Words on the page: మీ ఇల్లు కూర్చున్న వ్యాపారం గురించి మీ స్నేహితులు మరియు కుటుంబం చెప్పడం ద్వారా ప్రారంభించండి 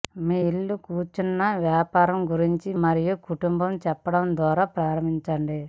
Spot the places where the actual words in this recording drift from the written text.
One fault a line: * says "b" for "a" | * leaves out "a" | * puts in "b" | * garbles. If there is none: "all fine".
* leaves out "మీ స్నేహితులు"